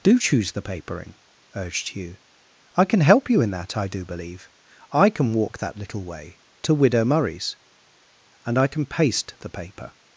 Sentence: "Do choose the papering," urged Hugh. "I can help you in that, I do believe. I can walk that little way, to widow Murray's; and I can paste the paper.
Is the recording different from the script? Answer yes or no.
no